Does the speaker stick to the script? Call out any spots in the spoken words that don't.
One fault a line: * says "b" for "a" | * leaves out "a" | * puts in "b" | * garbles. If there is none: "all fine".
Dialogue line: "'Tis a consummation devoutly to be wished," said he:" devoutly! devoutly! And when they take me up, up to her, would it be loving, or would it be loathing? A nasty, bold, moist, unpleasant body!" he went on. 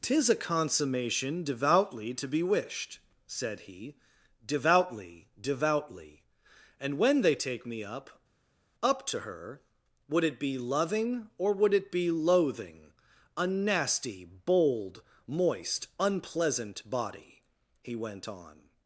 all fine